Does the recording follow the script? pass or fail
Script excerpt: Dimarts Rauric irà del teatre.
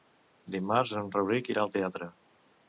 fail